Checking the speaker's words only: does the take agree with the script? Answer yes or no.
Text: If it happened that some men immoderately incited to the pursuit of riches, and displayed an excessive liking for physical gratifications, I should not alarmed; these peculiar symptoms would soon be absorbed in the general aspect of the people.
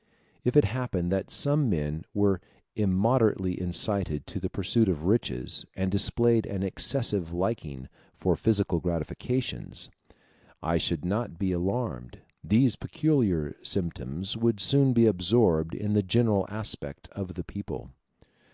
no